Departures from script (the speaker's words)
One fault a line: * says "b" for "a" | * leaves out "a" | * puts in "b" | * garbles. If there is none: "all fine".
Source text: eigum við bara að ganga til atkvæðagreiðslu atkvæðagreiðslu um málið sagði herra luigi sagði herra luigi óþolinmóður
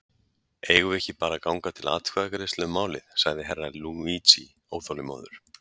* puts in "ekki"
* leaves out "atkvæðagreiðslu"
* leaves out "sagði herra luigi"